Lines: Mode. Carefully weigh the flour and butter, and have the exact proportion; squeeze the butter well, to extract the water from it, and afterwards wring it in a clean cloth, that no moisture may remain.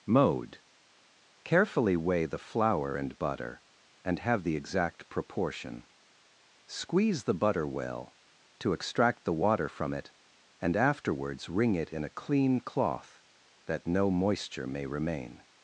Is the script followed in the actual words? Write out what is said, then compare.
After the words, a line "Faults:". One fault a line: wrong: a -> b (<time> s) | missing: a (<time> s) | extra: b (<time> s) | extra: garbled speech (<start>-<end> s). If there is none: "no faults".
Mode. Carefully weigh the flour and butter, and have the exact proportion; squeeze the butter well, to extract the water from it, and afterwards wring it in a clean cloth, that no moisture may remain.
Faults:
no faults